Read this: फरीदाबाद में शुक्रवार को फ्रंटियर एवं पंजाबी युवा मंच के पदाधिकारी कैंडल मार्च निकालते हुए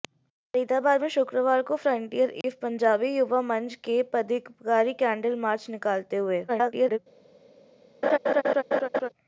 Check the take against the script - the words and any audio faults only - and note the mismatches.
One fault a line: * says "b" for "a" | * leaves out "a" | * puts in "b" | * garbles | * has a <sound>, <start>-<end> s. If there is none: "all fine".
* has a dropout, 2.4-2.4 s
* garbles
* has a laugh, 8.0-9.1 s